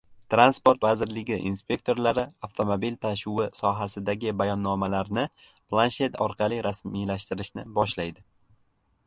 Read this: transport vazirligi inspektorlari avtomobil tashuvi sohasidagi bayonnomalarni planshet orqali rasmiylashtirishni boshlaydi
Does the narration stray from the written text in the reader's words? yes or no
no